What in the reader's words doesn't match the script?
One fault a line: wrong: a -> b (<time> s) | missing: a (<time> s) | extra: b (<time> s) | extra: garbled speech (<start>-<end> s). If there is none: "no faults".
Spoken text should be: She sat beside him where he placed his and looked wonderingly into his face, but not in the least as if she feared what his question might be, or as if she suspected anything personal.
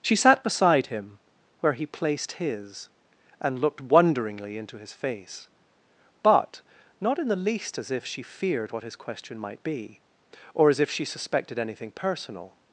no faults